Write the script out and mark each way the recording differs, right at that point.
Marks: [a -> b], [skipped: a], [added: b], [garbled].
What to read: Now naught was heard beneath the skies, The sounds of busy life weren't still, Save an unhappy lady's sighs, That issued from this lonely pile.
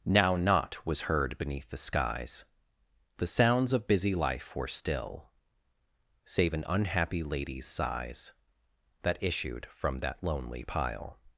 Now naught was heard beneath the skies, The sounds of busy life [weren't -> were] still, Save an unhappy lady's sighs, That issued from [this -> that] lonely pile.